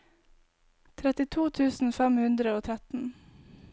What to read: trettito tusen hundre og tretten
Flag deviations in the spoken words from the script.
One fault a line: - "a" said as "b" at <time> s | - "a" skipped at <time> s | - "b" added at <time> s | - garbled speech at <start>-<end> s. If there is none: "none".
- "fem" added at 2.0 s